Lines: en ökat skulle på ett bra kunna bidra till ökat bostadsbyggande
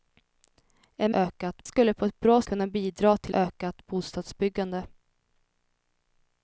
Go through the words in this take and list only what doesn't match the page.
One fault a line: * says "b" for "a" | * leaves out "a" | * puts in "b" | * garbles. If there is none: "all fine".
all fine